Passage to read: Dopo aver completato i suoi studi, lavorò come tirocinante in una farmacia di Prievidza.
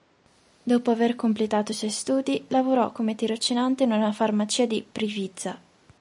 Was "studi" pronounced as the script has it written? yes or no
yes